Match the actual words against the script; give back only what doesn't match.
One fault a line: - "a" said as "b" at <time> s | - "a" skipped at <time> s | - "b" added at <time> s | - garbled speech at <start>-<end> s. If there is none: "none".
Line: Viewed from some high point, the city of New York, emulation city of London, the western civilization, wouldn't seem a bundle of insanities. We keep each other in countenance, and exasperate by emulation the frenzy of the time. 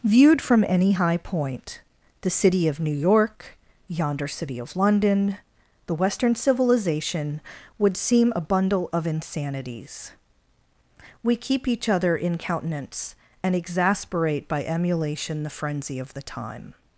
- "some" said as "any" at 0.7 s
- "emulation" said as "yonder" at 3.9 s
- "wouldn't" said as "would" at 7.8 s